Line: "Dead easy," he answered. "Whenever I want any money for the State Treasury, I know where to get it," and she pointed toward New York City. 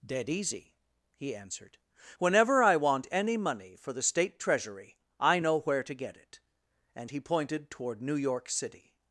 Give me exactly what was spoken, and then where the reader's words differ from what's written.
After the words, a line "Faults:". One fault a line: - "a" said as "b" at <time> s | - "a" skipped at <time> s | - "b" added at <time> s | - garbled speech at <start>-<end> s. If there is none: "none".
"Dead easy," he answered. "Whenever I want any money for the State Treasury, I know where to get it," and he pointed toward New York City.
Faults:
- "she" said as "he" at 7.1 s